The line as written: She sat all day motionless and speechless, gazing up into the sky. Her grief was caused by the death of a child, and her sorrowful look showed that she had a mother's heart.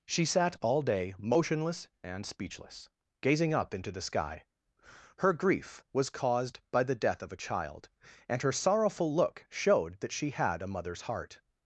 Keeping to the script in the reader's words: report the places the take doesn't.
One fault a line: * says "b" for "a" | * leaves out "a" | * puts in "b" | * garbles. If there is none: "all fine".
all fine